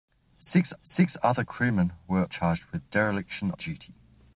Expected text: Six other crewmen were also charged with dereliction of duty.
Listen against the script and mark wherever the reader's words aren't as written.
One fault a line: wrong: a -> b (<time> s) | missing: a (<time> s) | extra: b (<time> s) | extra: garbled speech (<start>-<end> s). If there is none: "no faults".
extra: six (0.8 s)
missing: also (2.2 s)
missing: of (3.5 s)